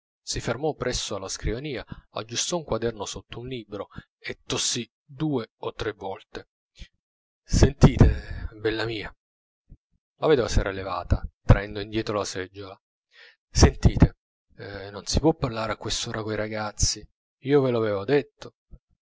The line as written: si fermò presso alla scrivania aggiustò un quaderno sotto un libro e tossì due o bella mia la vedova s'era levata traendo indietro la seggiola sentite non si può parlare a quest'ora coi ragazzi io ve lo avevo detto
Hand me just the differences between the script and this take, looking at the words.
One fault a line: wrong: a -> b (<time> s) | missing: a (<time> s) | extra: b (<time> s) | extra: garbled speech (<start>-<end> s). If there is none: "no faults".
extra: tre volte sentite (5.7 s)